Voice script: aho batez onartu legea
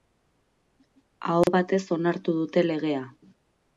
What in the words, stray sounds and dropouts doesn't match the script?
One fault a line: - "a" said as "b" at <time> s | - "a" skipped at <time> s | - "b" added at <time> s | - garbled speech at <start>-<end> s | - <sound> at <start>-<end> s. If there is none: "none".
- dropout at 1.4-1.5 s
- "dute" added at 2.4 s